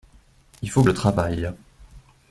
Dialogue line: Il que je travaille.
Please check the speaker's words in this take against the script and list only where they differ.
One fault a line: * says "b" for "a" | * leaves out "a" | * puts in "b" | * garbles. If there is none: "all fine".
* puts in "faut"